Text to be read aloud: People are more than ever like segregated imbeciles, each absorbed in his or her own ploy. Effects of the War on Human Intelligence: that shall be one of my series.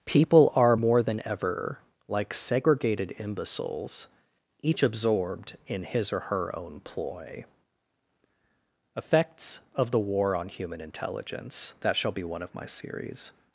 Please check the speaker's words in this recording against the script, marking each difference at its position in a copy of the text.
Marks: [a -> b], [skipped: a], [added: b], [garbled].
People are more than ever like segregated imbeciles, each absorbed in his or her own ploy. Effects of the War on Human Intelligence: that shall be one of my series.